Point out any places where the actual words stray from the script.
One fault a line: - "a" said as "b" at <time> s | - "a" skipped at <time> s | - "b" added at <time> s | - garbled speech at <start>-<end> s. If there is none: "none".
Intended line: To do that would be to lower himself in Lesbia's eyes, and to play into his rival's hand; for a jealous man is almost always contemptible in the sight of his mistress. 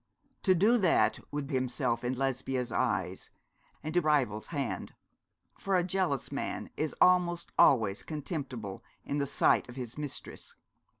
- "be to lower" skipped at 1.5 s
- "play into his" skipped at 4.0 s